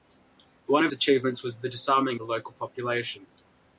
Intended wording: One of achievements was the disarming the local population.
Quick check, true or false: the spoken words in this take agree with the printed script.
true